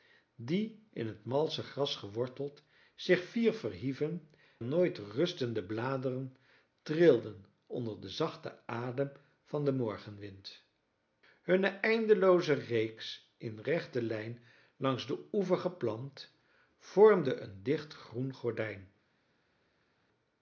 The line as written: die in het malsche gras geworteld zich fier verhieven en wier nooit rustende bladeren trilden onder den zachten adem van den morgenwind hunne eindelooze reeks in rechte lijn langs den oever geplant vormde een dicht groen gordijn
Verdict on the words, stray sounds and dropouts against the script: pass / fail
fail